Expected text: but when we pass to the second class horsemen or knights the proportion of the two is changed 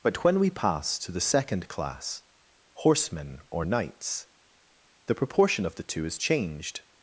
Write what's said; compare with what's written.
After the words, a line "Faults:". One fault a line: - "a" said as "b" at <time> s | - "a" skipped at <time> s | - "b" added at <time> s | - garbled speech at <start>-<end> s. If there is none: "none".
but when we pass to the second class horsemen or knights the proportion of the two is changed
Faults:
none